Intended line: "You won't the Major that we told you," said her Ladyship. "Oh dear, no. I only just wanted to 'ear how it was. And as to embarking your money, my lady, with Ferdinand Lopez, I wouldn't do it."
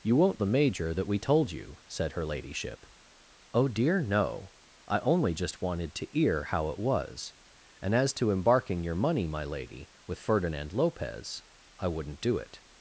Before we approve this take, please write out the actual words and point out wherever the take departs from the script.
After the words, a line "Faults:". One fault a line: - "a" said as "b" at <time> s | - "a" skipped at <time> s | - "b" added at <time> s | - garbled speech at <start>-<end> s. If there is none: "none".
"You won't the Major that we told you," said her Ladyship. "Oh dear, no. I only just wanted to 'ear how it was. And as to embarking your money, my lady, with Ferdinand Lopez, I wouldn't do it."
Faults:
none